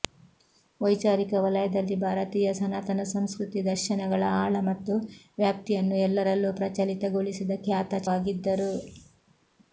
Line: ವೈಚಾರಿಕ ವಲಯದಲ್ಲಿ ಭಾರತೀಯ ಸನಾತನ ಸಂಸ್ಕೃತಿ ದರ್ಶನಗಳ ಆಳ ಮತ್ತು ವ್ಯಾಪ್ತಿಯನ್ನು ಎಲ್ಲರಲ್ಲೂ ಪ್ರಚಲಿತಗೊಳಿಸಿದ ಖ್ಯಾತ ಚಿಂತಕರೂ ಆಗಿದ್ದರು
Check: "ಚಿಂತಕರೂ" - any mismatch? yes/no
yes